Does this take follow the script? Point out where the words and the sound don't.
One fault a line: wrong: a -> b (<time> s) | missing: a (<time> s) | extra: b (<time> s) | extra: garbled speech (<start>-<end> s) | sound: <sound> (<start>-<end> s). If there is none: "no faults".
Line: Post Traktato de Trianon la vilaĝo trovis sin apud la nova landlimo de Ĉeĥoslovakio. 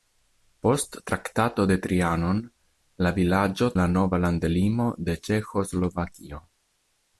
missing: trovis sin apud (3.7 s)